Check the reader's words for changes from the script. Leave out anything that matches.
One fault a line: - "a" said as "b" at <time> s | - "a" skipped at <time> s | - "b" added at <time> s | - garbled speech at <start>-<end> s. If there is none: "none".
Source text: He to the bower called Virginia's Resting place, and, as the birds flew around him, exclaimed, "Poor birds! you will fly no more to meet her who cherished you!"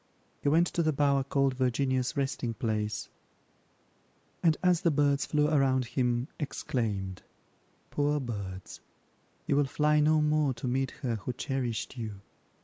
- "went" added at 0.5 s